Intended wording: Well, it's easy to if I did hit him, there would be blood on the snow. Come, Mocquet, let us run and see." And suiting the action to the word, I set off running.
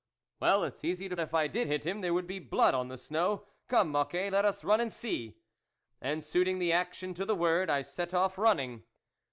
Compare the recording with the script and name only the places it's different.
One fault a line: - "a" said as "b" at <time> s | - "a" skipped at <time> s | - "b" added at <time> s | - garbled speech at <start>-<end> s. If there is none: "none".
none